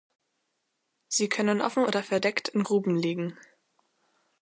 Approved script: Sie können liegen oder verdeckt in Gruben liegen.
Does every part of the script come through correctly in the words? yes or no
no